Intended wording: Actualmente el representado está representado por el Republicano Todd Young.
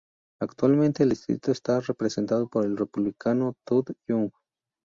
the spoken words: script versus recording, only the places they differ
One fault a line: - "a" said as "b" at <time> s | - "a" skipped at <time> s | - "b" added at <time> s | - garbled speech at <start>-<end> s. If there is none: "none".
- "representado" said as "distrito" at 1.1 s